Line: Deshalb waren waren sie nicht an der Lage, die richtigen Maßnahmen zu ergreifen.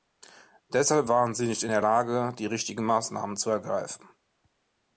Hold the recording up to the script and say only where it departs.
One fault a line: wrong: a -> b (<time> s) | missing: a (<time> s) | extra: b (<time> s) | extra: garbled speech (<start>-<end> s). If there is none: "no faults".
missing: waren (1.3 s)
wrong: an -> in (1.6 s)